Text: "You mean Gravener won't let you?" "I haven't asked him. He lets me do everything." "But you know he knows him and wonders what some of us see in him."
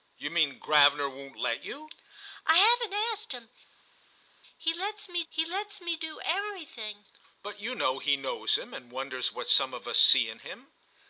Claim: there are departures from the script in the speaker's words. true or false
true